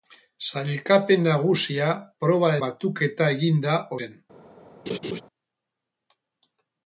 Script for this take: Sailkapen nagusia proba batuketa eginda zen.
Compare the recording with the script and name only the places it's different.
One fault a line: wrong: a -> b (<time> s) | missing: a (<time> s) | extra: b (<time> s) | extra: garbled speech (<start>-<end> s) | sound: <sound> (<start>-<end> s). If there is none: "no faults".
sound: laugh (4.9-5.2 s)